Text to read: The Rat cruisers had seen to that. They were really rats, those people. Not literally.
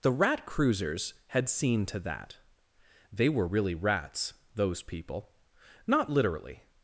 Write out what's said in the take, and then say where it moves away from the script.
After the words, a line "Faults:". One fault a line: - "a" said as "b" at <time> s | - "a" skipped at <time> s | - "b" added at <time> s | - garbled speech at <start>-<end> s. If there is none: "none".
The Rat cruisers had seen to that. They were really rats, those people. Not literally.
Faults:
none